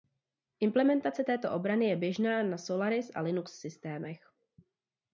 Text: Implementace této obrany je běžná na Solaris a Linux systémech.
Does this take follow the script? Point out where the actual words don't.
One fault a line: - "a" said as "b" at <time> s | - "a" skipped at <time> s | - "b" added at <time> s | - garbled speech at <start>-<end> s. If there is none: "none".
none